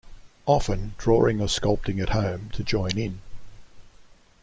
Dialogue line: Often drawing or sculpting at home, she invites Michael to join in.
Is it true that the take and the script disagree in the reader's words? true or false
true